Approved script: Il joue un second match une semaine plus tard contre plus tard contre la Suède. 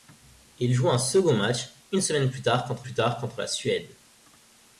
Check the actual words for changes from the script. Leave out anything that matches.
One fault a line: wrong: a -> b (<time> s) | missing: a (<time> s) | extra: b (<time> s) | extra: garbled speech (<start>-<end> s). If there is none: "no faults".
no faults